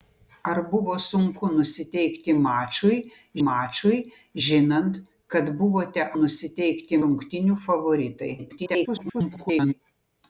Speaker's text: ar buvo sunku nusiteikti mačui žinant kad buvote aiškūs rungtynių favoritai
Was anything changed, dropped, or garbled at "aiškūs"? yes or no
yes